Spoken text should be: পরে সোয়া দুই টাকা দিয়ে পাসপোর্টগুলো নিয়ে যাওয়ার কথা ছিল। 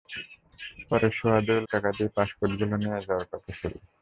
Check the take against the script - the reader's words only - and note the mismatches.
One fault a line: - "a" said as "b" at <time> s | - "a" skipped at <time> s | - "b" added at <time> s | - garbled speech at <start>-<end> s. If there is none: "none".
none